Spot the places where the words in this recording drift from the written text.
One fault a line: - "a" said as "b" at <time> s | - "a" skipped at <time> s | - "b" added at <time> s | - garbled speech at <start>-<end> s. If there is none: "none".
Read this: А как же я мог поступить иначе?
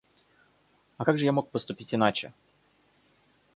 none